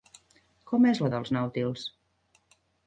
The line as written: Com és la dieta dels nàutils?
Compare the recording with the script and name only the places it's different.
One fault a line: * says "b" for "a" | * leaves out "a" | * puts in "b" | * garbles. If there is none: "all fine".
* leaves out "dieta"